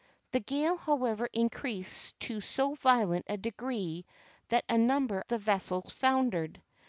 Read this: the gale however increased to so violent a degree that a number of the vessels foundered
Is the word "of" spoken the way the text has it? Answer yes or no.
no